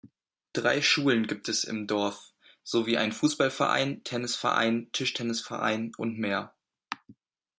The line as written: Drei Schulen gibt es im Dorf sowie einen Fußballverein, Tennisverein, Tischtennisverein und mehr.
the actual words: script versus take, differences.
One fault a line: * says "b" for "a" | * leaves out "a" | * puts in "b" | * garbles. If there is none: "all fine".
all fine